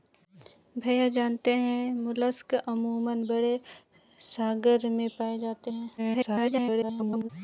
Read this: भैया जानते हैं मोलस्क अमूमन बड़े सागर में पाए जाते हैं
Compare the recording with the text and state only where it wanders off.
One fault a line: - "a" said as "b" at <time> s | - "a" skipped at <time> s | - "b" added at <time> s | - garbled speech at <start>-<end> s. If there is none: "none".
- garbled speech at 6.0-7.3 s